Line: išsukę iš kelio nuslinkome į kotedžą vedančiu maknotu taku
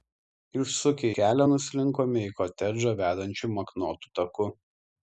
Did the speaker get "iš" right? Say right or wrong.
wrong